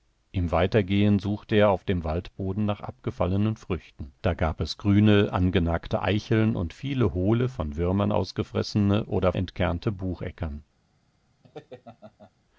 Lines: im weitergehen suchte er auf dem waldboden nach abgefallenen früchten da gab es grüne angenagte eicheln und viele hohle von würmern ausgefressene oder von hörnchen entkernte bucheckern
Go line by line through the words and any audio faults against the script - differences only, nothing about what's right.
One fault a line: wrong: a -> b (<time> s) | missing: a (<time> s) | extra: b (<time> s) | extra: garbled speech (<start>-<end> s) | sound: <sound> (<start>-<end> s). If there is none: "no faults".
missing: von hörnchen (9.3 s)
sound: laugh (11.4-12.3 s)